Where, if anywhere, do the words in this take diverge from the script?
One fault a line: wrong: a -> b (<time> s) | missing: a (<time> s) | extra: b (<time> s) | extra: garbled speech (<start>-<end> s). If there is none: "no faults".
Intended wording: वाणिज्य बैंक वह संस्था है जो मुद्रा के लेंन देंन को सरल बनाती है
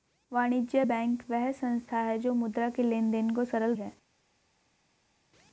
missing: बनाती (3.7 s)